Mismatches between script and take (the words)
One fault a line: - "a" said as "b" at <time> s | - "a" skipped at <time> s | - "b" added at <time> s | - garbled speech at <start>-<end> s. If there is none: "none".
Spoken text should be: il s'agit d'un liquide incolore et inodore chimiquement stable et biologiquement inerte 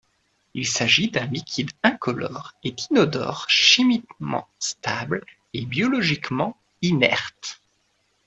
none